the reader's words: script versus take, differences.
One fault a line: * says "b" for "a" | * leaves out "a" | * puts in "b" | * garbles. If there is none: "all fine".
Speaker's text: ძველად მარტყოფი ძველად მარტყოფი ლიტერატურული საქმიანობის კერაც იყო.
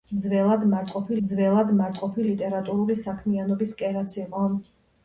all fine